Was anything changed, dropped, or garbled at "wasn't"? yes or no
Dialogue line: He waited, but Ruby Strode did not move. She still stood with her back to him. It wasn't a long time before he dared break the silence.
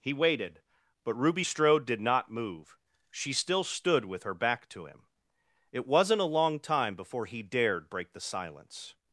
no